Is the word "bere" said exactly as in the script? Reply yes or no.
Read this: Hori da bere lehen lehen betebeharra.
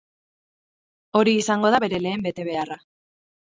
yes